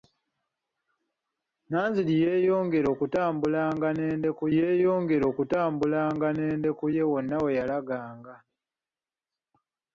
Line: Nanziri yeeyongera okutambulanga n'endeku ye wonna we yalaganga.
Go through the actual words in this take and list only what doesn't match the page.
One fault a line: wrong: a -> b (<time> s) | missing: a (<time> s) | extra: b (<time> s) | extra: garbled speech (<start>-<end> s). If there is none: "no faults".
extra: yeeyongera okutambulanga n'endeku (4.6 s)